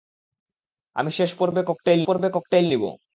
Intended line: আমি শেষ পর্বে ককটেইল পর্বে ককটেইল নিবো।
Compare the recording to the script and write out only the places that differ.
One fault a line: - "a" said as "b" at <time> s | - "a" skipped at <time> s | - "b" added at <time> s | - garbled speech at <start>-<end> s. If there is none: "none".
none